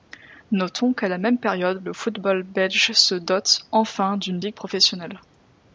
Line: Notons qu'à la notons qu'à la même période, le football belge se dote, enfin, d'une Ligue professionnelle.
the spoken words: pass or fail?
fail